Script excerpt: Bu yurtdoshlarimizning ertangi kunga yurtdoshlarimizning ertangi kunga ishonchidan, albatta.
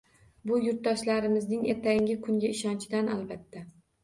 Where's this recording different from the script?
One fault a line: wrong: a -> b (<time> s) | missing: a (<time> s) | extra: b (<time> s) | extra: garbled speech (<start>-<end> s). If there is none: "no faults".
missing: yurtdoshlarimizning ertangi kunga (2.5 s)